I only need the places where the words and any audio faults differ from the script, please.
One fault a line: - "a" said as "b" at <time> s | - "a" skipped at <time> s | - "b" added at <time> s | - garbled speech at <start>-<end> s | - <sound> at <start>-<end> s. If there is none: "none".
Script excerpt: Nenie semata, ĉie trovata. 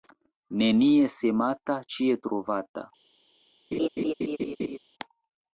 - laugh at 3.7-4.8 s